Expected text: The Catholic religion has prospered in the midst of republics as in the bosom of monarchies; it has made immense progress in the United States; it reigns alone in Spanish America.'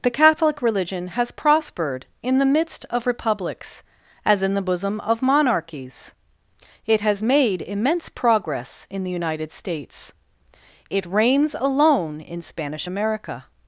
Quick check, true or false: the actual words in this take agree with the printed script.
true